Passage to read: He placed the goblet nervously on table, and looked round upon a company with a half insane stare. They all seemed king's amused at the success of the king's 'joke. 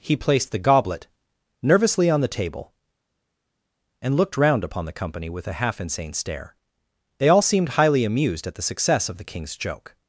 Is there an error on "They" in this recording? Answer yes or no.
no